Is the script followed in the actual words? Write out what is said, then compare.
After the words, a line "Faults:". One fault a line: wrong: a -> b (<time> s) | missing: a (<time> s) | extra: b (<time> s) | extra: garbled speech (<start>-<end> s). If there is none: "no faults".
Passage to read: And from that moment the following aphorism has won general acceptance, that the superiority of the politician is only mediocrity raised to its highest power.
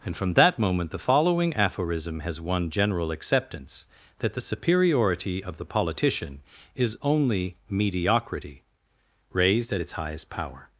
And from that moment the following aphorism has won general acceptance, that the superiority of the politician is only mediocrity raised at its highest power.
Faults:
wrong: to -> at (9.7 s)